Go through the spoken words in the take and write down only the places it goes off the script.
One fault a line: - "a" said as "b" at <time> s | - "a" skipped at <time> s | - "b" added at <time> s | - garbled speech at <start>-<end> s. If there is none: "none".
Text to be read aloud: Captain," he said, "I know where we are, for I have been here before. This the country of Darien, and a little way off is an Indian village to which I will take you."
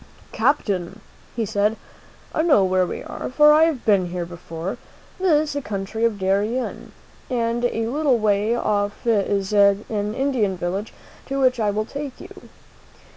none